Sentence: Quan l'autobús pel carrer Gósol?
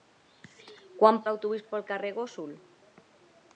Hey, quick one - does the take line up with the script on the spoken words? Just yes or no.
yes